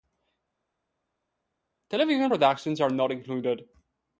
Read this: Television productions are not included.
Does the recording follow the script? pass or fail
pass